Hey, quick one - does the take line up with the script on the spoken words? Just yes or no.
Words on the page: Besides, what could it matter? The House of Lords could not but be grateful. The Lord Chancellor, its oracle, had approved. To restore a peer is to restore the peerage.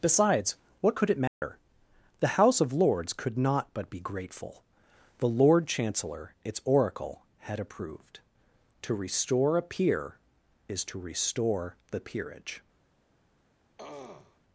yes